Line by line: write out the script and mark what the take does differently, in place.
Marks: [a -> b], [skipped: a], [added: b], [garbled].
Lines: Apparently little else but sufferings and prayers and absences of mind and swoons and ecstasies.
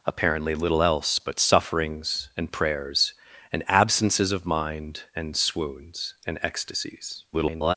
Apparently little else but sufferings and prayers and absences of mind and swoons and ecstasies. [garbled]